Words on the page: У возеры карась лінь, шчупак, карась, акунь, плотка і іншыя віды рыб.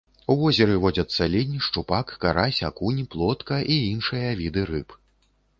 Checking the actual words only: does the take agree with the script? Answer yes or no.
no